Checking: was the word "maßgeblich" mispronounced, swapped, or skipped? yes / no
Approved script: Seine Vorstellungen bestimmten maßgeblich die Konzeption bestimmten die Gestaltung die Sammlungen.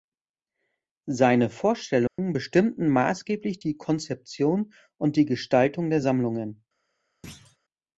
no